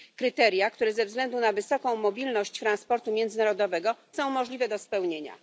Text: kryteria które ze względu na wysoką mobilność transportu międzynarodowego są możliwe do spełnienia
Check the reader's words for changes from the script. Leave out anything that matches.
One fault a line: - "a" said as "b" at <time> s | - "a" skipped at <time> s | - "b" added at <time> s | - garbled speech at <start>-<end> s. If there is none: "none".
none